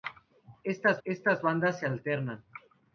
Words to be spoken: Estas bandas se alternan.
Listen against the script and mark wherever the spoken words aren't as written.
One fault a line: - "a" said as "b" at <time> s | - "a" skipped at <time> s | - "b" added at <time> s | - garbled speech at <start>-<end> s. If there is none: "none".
- "estas" added at 1.0 s